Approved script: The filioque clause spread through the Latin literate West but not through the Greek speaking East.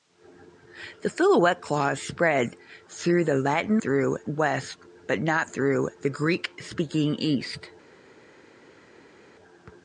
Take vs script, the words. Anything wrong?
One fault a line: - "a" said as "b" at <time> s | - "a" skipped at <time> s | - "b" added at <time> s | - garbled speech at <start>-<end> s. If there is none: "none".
- "literate" said as "through" at 3.8 s